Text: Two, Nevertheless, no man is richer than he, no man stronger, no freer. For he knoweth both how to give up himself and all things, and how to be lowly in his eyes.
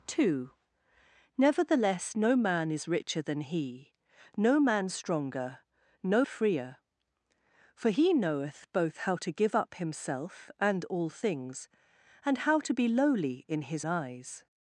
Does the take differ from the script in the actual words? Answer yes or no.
no